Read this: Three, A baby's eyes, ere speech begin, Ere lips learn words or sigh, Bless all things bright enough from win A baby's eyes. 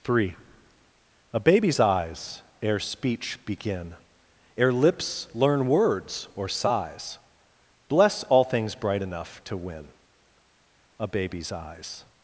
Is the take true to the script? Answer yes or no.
no